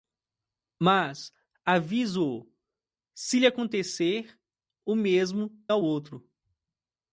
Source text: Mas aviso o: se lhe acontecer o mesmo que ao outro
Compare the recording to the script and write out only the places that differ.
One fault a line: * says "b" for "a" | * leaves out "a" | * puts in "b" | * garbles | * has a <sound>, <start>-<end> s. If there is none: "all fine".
* leaves out "que"